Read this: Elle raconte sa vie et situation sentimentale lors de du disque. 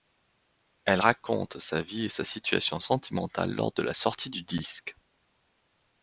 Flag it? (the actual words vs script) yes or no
yes